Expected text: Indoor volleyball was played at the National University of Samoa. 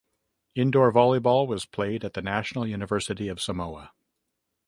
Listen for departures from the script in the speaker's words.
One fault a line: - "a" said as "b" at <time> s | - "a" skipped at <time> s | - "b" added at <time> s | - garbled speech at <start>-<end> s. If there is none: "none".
none